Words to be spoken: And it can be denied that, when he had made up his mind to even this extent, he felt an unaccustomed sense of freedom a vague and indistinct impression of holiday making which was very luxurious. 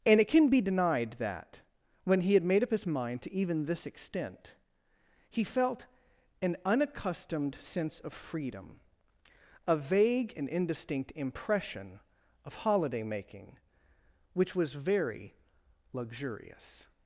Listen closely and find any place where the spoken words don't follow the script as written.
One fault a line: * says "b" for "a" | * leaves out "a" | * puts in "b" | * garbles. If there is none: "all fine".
all fine